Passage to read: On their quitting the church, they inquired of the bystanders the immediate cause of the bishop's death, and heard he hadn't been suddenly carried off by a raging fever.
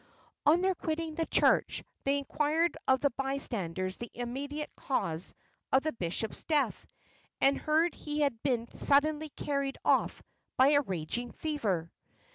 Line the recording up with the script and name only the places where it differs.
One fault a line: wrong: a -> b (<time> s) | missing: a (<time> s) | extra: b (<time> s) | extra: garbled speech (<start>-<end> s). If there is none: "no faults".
wrong: hadn't -> had (8.2 s)